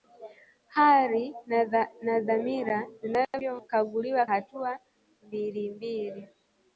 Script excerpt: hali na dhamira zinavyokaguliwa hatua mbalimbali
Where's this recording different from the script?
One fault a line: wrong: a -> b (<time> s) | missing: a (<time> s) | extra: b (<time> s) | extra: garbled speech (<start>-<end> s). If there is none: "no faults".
no faults